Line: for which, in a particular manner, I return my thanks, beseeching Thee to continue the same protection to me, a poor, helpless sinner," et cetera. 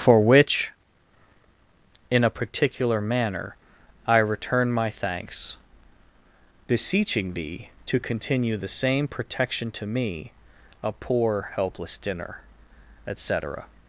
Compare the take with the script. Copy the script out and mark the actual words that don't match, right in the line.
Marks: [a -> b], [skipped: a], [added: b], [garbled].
for which, in a particular manner, I return my thanks, beseeching Thee to continue the same protection to me, a poor, helpless [sinner," -> dinner] et cetera.